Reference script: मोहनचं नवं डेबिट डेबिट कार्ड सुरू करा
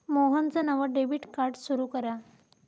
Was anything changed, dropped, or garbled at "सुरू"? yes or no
no